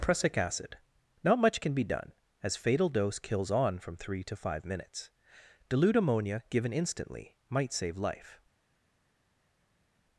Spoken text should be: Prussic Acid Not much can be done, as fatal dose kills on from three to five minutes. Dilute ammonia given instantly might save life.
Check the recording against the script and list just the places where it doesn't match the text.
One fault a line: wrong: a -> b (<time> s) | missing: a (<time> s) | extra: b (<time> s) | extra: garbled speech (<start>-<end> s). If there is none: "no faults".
no faults